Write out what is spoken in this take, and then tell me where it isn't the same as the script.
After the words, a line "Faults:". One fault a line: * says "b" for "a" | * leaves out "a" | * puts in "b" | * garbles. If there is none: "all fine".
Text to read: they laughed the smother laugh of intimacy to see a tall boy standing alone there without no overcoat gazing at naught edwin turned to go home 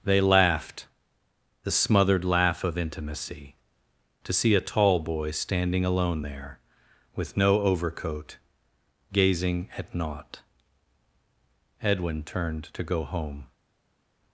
they laughed the smothered laugh of intimacy to see a tall boy standing alone there with no overcoat gazing at naught edwin turned to go home
Faults:
* says "smothered" for "smother"
* says "with" for "without"